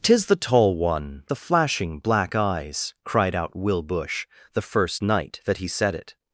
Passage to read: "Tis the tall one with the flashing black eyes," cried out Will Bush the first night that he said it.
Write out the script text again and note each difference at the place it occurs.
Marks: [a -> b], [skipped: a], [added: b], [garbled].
"Tis the tall one [skipped: with] the flashing black eyes," cried out Will Bush the first night that he said it.